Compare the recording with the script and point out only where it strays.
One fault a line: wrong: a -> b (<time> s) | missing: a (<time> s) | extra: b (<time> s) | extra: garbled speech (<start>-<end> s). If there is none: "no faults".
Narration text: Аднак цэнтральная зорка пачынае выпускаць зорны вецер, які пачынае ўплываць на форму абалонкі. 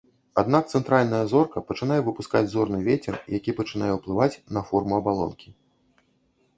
no faults